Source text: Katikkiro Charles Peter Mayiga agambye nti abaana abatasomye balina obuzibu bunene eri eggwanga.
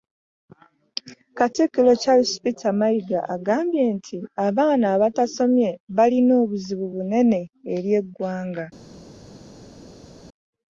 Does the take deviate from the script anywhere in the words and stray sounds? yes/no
no